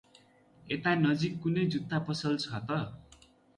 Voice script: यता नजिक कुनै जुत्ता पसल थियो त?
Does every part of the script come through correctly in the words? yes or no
no